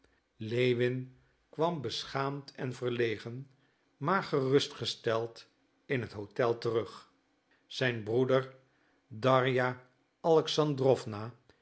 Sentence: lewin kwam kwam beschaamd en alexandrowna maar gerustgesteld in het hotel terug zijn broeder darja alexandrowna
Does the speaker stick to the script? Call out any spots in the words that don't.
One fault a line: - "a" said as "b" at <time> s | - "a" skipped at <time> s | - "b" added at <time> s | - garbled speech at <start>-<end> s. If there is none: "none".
- "kwam" skipped at 1.8 s
- "alexandrowna" said as "verlegen" at 2.7 s